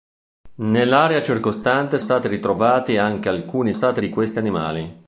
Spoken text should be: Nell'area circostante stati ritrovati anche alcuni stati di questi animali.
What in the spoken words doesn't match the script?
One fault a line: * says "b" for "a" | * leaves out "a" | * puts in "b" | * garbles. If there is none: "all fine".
all fine